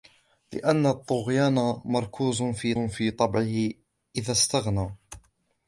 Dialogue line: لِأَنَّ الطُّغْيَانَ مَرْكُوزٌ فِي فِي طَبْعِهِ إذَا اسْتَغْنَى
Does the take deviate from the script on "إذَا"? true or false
false